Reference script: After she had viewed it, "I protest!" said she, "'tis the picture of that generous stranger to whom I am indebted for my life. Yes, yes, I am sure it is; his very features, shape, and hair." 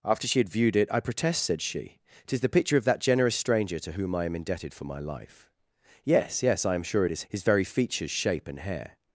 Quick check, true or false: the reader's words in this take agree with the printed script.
true